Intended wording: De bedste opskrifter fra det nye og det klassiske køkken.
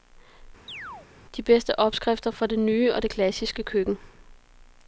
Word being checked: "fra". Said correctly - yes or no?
yes